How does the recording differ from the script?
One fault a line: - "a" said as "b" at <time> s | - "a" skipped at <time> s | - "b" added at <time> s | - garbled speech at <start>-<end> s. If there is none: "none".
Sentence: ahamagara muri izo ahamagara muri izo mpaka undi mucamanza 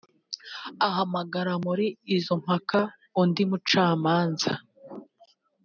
- "ahamagara muri izo" skipped at 2.3 s